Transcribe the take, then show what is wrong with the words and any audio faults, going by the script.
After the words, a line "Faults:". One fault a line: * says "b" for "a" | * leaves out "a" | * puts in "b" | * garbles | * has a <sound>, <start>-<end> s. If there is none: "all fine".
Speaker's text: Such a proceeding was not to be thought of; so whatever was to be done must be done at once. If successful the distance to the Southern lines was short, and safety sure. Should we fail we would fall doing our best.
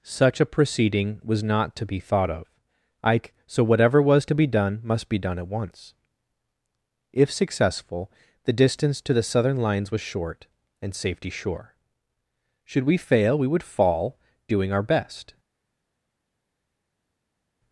Such a proceeding was not to be thought of; ike so whatever was to be done must be done at once. If successful the distance to the Southern lines was short, and safety sure. Should we fail we would fall doing our best.
Faults:
* puts in "ike"